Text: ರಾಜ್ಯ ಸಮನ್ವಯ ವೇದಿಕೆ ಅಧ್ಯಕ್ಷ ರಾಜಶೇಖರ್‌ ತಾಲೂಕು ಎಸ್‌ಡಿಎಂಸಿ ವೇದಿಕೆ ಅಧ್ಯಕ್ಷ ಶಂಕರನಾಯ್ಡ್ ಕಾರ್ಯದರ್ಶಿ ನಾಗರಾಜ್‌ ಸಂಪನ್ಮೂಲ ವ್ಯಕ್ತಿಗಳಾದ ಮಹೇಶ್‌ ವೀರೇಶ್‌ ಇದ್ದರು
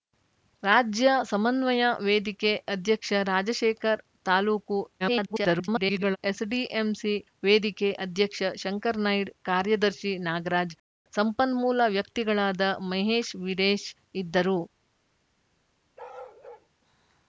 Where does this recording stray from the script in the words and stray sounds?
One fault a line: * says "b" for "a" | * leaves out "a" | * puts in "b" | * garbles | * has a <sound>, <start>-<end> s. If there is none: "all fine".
* garbles
* has a bark, 16.0-16.7 s